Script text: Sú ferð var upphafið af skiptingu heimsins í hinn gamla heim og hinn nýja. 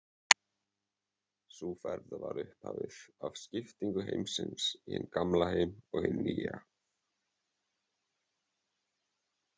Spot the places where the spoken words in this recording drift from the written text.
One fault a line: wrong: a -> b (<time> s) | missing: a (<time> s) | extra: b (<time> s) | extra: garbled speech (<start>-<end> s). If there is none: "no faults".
no faults